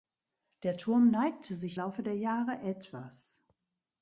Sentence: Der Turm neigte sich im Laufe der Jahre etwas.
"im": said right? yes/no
no